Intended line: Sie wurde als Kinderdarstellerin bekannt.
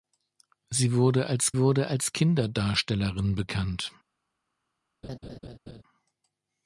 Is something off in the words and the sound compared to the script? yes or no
yes